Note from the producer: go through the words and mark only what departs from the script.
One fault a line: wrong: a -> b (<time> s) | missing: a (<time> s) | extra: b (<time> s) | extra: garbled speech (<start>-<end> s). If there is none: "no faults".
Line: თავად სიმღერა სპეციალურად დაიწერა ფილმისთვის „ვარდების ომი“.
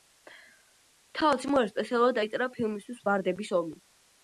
no faults